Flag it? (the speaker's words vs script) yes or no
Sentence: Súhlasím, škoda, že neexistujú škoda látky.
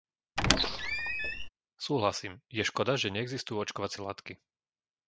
yes